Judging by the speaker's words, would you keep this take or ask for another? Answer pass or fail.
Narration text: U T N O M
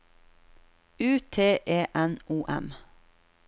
fail